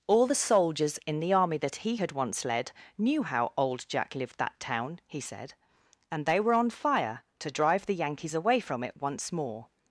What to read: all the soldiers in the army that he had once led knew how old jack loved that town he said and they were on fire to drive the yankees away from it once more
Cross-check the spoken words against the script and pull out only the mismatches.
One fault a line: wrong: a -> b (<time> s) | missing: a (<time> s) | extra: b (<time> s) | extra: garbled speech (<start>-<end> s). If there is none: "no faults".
wrong: loved -> lived (4.1 s)